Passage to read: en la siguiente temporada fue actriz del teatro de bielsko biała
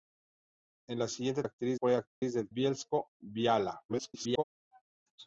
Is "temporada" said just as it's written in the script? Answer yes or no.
no